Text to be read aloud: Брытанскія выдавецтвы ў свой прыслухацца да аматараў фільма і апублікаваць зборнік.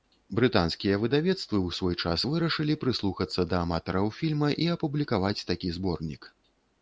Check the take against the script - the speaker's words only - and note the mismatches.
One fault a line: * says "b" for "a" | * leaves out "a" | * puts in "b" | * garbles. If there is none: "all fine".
* puts in "час вырашылі"
* puts in "такі"